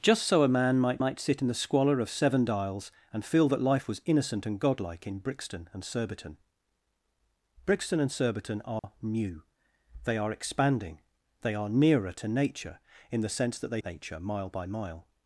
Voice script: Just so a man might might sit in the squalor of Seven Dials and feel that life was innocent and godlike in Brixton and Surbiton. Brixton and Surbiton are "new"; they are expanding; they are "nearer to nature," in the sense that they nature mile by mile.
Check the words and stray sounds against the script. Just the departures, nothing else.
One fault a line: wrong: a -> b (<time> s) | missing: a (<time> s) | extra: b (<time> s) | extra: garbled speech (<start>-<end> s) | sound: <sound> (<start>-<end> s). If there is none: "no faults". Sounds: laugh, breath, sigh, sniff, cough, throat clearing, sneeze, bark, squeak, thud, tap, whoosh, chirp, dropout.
sound: dropout (8.8-8.8 s)